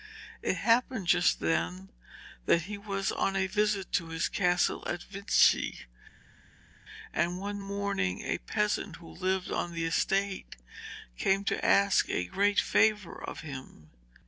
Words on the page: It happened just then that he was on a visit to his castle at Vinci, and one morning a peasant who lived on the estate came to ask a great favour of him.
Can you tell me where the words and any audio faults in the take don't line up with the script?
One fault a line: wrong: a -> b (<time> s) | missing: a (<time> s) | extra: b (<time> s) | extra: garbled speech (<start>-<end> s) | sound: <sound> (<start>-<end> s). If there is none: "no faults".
no faults